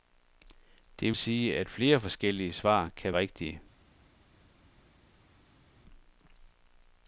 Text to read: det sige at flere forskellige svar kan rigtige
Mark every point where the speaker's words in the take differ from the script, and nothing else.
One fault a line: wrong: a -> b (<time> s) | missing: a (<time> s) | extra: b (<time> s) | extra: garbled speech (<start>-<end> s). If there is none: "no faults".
no faults